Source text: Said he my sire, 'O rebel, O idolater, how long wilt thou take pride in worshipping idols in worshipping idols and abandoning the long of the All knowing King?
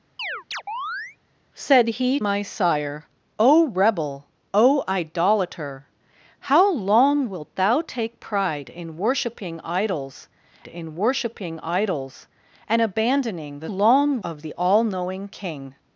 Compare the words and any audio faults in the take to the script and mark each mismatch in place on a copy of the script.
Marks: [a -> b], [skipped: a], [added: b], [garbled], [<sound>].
[chirp] Said he my sire, 'O rebel, O idolater, how long wilt thou take pride in worshipping idols in worshipping idols and abandoning the long of the All knowing King?